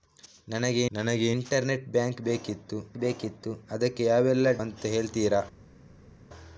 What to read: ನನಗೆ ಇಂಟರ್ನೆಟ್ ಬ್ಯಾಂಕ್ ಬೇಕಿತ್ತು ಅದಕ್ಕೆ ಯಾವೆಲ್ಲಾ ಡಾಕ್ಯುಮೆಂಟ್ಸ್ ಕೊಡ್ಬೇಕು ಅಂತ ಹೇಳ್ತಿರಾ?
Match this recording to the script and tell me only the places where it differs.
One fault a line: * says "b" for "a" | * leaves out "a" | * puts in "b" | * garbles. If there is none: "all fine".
* puts in "ನನಗೆ"
* puts in "ಬೇಕಿತ್ತು"
* leaves out "ಡಾಕ್ಯುಮೆಂಟ್ಸ್ ಕೊಡ್ಬೇಕು"